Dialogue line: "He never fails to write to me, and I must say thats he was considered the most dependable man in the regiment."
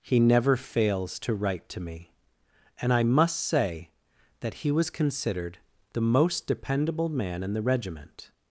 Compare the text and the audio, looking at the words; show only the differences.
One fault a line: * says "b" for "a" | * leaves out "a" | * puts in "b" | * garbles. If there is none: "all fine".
* says "that" for "thats"